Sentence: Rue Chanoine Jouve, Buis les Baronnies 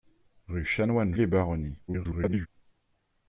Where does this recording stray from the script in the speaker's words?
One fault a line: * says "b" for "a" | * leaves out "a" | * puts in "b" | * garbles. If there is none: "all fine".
* leaves out "Jouve Buis"
* garbles